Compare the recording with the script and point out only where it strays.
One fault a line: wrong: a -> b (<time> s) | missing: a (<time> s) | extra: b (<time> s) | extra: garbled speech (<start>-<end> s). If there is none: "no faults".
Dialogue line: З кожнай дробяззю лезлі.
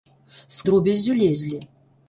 missing: кожнай (0.6 s)